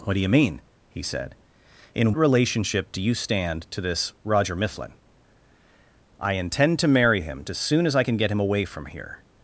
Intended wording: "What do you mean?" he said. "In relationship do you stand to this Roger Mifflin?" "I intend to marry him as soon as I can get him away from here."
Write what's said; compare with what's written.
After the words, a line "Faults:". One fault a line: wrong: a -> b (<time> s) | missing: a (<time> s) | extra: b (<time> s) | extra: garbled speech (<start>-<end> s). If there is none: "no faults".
"What do you mean?" he said. "In relationship do you stand to this Roger Mifflin?" "I intend to marry him as soon as I can get him away from here."
Faults:
no faults